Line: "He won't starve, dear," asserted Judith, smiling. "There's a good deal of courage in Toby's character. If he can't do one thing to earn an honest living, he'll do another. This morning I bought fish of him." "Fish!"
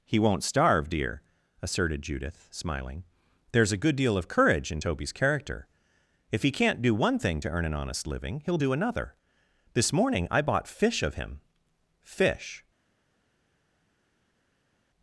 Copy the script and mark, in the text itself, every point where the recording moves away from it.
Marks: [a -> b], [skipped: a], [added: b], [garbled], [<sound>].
"He won't starve, dear," asserted Judith, smiling. "There's a good deal of courage in Toby's character. If he can't do one thing to earn an honest living, he'll do another. This morning I bought fish of him." "Fish!"